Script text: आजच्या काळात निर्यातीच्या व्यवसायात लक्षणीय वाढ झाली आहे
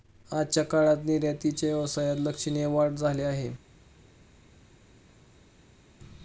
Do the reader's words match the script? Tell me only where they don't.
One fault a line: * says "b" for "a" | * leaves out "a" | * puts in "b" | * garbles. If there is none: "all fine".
all fine